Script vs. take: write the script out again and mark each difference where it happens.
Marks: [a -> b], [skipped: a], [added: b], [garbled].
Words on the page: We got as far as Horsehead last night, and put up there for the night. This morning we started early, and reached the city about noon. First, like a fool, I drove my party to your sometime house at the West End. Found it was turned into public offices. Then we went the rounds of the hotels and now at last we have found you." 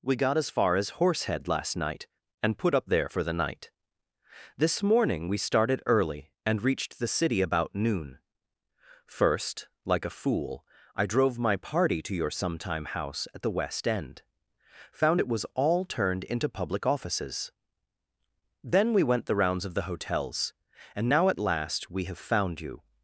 We got as far as Horsehead last night, and put up there for the night. This morning we started early, and reached the city about noon. First, like a fool, I drove my party to your sometime house at the West End. Found it was [added: all] turned into public offices. Then we went the rounds of the hotels and now at last we have found you."